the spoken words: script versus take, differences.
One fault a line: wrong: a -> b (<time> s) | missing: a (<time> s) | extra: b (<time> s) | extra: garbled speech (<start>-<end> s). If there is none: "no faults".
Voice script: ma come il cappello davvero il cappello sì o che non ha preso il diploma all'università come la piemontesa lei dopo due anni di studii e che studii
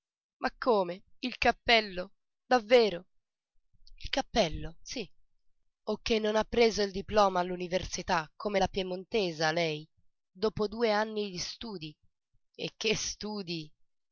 no faults